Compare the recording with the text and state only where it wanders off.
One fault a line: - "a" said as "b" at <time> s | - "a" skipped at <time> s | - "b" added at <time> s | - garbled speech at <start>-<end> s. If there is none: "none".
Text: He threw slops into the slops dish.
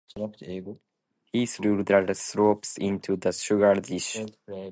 - "the" added at 1.8 s
- "slops" said as "sugar" at 3.3 s